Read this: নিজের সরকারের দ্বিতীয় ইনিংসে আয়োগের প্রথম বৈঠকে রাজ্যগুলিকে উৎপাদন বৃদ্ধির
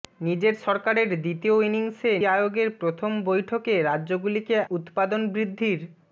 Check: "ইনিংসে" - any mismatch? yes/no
no